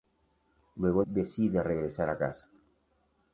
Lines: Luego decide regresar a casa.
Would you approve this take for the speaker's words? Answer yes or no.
yes